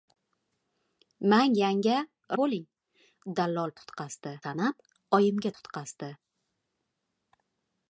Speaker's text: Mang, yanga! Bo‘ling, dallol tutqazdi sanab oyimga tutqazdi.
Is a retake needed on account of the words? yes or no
no